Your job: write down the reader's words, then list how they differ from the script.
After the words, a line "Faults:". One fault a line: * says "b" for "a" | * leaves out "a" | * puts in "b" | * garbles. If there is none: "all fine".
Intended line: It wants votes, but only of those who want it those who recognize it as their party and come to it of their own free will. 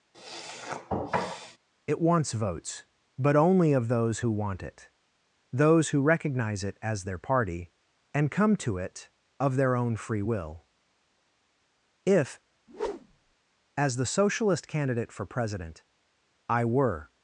It wants votes, but only of those who want it those who recognize it as their party and come to it of their own free will. If, as the Socialist candidate for president, I were
Faults:
* puts in "If as the Socialist candidate for president I were"